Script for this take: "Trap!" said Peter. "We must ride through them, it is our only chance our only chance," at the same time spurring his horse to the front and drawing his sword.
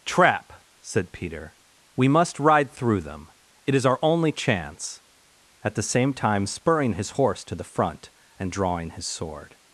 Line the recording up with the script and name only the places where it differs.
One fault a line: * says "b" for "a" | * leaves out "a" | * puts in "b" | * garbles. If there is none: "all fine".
* leaves out "our only chance"